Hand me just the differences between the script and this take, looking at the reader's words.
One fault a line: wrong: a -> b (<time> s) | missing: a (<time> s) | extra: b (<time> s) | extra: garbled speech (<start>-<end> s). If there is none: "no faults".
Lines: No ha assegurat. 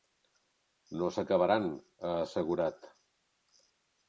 extra: s'acabaran (1.2 s)